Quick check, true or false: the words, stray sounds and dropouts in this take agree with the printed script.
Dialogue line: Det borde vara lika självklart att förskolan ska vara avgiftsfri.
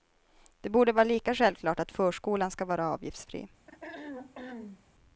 false